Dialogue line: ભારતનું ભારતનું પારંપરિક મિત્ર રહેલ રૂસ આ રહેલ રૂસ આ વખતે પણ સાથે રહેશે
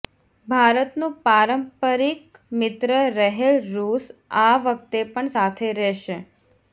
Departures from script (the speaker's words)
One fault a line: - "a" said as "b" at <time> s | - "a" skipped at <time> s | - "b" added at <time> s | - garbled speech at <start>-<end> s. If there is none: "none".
- "ભારતનું" skipped at 1.1 s
- "રહેલ રૂસ આ" skipped at 4.5 s